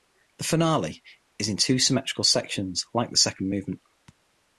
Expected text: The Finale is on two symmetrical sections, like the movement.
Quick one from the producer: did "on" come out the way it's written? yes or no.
no